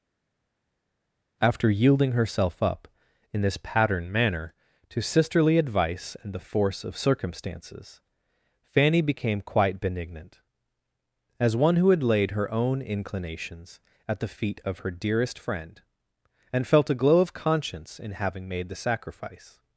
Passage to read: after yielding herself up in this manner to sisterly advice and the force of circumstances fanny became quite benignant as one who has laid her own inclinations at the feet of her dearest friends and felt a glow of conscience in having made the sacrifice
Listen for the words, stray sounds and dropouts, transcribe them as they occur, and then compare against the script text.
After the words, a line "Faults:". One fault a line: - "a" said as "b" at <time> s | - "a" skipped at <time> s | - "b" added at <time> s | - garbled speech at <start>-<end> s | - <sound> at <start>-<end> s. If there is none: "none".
after yielding herself up in this pattern manner to sisterly advice and the force of circumstances fanny became quite benignant as one who had laid her own inclinations at the feet of her dearest friend and felt a glow of conscience in having made the sacrifice
Faults:
- "pattern" added at 3.6 s
- "has" said as "had" at 11.9 s
- "friends" said as "friend" at 15.4 s